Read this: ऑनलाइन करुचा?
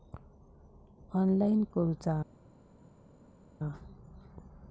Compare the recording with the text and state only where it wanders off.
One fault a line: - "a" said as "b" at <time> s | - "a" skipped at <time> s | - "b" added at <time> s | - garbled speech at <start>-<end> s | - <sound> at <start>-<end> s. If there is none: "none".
none